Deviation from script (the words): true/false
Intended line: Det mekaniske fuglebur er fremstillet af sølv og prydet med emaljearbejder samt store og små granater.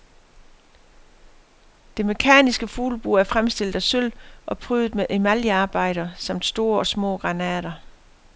false